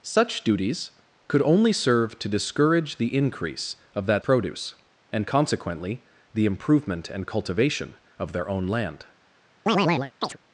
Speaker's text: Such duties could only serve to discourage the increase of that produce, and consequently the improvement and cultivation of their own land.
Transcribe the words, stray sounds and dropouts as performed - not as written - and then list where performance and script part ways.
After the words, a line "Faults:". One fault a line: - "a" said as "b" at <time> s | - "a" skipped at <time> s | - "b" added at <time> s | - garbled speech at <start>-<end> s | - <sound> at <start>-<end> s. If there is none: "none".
Such duties could only serve to discourage the increase of that produce, and consequently the improvement and cultivation of their own land.
Faults:
- chirp at 9.7-10.4 s